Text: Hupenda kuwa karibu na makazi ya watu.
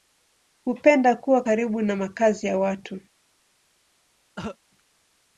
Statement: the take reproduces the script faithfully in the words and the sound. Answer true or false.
false